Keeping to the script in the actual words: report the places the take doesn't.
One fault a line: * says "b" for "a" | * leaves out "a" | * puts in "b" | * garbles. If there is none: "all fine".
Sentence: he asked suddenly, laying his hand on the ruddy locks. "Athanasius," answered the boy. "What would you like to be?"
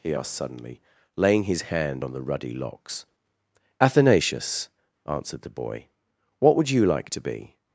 all fine